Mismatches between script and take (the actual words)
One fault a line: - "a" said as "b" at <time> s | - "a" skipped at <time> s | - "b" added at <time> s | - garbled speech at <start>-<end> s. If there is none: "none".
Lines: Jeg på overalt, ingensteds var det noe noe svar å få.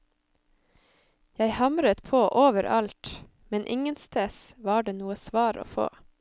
- "hamret" added at 1.6 s
- "men" added at 3.5 s
- "noe" skipped at 5.2 s